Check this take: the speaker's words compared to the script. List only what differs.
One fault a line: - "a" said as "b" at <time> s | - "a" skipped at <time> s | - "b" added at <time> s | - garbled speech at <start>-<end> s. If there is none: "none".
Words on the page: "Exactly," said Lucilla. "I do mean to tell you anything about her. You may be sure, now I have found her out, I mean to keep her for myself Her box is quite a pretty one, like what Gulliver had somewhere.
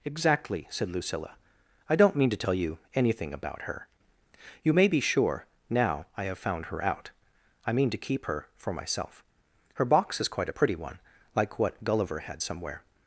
- "do" said as "don't" at 1.9 s